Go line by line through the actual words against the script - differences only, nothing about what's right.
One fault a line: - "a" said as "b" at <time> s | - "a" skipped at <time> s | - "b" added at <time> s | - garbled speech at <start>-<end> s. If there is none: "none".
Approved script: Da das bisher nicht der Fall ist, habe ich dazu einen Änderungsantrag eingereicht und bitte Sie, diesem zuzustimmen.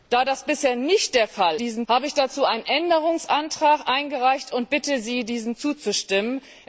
- "ist" said as "diesem" at 1.5 s